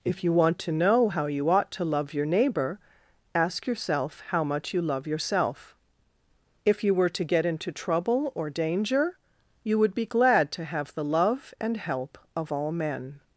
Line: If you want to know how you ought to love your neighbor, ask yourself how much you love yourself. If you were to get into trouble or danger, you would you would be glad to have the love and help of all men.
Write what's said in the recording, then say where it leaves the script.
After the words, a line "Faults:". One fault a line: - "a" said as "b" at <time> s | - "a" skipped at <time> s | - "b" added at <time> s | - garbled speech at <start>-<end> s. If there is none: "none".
If you want to know how you ought to love your neighbor, ask yourself how much you love yourself. If you were to get into trouble or danger, you would be glad to have the love and help of all men.
Faults:
- "you would" skipped at 9.9 s